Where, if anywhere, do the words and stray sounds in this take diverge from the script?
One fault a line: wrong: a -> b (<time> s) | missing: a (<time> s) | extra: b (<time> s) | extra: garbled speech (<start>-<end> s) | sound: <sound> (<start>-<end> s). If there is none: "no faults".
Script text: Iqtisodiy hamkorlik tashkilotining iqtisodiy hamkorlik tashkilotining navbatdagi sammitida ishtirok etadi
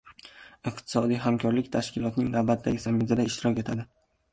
missing: iqtisodiy hamkorlik tashkilotining (2.4 s)